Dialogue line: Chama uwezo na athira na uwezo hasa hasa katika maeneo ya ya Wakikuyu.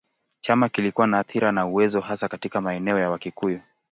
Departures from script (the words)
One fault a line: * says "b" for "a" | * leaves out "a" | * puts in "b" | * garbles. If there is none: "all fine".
* says "kilikuwa" for "uwezo"
* leaves out "hasa"
* leaves out "ya"